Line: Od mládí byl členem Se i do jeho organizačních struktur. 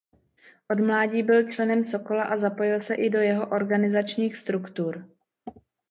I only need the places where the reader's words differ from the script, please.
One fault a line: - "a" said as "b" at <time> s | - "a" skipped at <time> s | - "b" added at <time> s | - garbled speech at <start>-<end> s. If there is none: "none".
- "Sokola a zapojil" added at 1.9 s